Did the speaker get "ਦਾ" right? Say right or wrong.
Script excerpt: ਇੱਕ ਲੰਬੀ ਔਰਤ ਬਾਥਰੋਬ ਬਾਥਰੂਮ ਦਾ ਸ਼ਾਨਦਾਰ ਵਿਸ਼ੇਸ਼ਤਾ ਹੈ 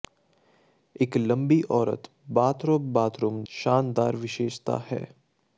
wrong